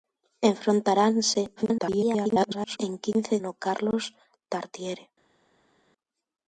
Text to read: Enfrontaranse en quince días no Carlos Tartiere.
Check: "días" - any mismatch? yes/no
yes